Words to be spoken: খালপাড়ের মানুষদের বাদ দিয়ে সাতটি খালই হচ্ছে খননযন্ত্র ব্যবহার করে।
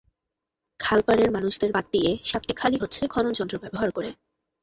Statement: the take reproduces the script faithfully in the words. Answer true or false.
true